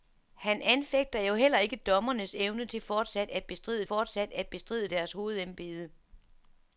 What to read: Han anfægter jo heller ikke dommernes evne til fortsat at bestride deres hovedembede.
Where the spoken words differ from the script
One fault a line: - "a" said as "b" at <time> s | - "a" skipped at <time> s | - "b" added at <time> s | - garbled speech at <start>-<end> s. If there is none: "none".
- "fortsat at bestride" added at 3.8 s